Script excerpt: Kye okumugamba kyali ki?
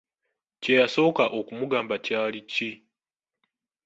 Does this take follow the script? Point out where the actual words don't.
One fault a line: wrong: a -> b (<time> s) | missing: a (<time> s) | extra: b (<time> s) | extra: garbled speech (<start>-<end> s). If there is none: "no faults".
extra: yasooka (0.8 s)